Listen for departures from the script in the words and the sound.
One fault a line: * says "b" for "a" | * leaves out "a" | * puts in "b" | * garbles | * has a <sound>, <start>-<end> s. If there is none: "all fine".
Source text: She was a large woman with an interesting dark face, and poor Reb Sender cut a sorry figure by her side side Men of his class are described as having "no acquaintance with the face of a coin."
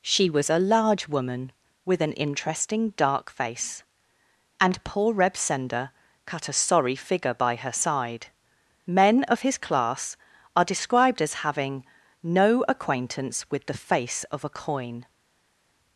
* leaves out "side"